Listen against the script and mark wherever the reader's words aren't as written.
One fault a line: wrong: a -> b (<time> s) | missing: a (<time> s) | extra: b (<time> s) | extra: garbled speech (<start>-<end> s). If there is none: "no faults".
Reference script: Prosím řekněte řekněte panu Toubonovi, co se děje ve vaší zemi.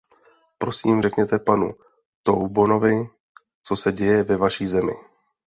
missing: řekněte (1.4 s)